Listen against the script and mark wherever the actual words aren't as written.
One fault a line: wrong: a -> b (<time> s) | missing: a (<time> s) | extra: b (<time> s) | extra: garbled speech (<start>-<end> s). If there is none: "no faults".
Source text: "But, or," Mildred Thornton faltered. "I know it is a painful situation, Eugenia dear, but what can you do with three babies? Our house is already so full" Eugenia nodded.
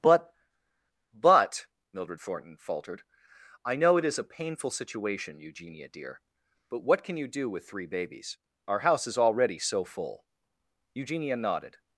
wrong: or -> but (1.1 s)